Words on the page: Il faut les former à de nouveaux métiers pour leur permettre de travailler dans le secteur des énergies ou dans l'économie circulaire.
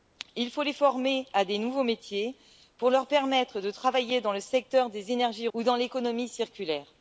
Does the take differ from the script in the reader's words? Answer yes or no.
no